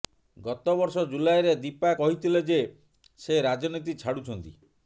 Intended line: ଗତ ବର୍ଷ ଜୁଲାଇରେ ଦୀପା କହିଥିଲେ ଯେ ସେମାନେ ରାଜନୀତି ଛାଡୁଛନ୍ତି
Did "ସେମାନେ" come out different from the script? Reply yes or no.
yes